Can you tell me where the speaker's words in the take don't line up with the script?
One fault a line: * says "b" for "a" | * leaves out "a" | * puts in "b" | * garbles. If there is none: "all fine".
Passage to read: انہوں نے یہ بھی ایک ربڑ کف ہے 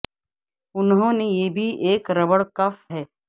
all fine